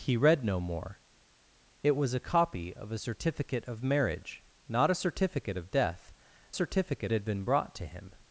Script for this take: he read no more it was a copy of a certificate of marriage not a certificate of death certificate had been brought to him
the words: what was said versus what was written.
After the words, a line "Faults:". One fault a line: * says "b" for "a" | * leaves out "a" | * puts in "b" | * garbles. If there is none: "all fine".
he read no more it was a copy of a certificate of marriage not a certificate of death certificate had been brought to him
Faults:
all fine